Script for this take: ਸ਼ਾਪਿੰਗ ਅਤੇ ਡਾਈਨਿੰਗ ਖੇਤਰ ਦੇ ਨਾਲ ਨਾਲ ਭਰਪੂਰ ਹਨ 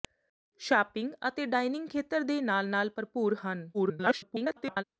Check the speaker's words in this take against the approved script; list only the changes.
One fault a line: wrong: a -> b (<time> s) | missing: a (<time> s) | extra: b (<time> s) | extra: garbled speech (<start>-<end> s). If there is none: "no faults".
extra: garbled speech (3.7-4.8 s)